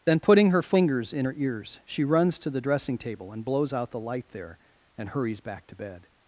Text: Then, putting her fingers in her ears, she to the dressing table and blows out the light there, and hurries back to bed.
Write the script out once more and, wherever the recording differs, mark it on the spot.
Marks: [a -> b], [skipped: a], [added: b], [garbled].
Then, putting her fingers in her ears, she [added: runs] to the dressing table and blows out the light there, and hurries back to bed.